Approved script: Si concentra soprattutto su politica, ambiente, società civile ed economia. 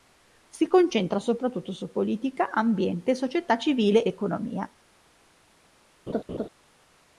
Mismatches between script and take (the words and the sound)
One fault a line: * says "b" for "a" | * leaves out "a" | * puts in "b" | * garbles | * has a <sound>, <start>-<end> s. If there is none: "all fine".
* leaves out "ed"
* has a laugh, 6.1-6.5 s